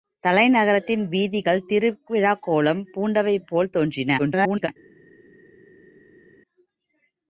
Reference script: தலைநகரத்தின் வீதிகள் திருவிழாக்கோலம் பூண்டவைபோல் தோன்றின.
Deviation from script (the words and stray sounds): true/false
true